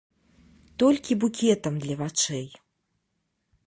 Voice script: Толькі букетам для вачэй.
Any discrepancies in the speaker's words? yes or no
no